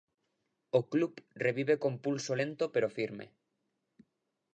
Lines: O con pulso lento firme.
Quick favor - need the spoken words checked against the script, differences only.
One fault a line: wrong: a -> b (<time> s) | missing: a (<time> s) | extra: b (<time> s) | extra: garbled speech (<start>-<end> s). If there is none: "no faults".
extra: club revive (0.9 s)
extra: pero (2.7 s)